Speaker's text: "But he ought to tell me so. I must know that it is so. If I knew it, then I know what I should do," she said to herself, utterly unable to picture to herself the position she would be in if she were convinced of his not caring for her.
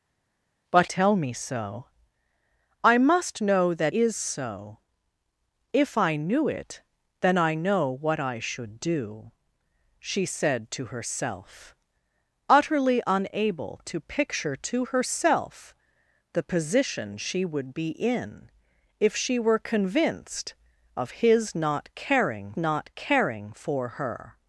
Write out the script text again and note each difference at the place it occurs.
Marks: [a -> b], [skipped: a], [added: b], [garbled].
"But [skipped: he ought to] tell me so. I must know that [skipped: it] is so. If I knew it, then I know what I should do," she said to herself, utterly unable to picture to herself the position she would be in if she were convinced of his not caring [added: not caring] for her.